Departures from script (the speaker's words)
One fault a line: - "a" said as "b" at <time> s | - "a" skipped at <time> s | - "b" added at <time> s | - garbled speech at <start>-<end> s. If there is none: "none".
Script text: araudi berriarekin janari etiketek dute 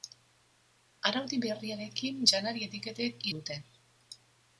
none